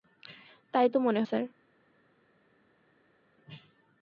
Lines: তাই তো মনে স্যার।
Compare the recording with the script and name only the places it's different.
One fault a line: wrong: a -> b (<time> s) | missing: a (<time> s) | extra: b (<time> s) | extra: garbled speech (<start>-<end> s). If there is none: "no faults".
no faults